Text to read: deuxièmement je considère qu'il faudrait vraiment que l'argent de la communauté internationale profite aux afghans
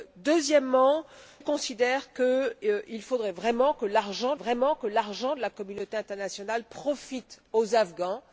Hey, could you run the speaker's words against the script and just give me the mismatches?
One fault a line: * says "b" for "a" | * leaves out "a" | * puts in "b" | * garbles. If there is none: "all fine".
* leaves out "je"
* puts in "vraiment que l'argent"